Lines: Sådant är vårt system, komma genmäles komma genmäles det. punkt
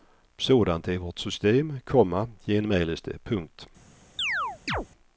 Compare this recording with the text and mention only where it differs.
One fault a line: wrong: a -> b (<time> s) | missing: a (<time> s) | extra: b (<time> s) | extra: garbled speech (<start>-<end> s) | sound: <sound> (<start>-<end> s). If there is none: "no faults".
missing: komma genmäles (3.0 s)
sound: chirp (4.2-4.9 s)